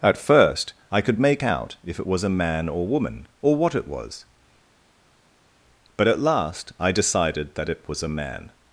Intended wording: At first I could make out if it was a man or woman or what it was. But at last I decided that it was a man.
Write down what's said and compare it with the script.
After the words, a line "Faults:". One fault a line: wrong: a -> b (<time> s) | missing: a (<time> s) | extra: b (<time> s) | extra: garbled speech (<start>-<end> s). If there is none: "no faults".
At first I could make out if it was a man or woman or what it was. But at last I decided that it was a man.
Faults:
no faults